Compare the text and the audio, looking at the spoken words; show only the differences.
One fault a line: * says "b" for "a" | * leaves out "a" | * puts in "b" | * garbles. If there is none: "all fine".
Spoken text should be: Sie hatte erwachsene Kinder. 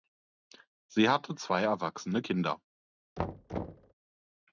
* puts in "zwei"